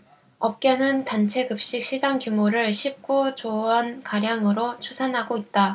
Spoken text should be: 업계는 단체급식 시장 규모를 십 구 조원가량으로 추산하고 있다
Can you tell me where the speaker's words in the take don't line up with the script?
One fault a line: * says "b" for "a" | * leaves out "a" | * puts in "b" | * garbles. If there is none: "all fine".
all fine